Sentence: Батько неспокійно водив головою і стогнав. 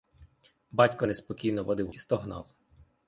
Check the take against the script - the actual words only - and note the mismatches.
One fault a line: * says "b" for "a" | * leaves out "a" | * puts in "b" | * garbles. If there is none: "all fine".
* leaves out "головою"